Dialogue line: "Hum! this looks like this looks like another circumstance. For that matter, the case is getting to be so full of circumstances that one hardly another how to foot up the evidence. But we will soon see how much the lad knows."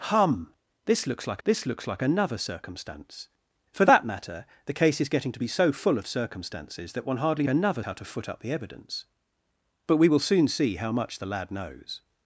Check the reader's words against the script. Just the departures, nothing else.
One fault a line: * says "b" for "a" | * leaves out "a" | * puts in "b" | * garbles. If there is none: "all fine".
all fine